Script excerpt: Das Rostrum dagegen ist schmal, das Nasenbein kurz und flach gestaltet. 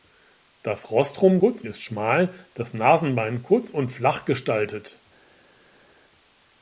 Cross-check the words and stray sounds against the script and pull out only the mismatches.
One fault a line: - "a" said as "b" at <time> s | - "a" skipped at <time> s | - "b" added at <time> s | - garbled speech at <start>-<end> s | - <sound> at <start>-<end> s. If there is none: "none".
- "dagegen" said as "kurz" at 1.3 s